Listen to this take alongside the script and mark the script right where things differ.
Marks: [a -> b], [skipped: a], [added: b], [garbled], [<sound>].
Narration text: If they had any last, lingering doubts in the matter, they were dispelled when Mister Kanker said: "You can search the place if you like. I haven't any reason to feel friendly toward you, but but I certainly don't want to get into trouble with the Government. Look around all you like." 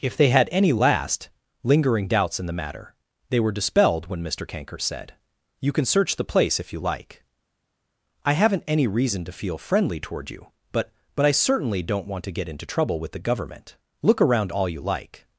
If they had any last, lingering doubts in the matter, they were dispelled when Mister Kanker said: "You can search the place if you like. I haven't any reason to feel friendly toward you, but but I certainly don't want to get into trouble with the Government. Look around all you like."